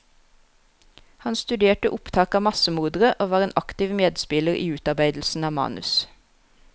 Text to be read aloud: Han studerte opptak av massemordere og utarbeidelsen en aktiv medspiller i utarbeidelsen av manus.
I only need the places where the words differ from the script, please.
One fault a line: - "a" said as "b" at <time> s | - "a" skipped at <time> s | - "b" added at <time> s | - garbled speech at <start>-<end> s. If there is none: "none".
- "utarbeidelsen" said as "var" at 3.4 s